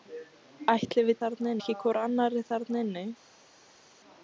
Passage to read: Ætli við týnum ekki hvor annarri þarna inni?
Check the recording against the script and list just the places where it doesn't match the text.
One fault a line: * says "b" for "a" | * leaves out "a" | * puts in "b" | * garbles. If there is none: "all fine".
* says "þarna" for "týnum"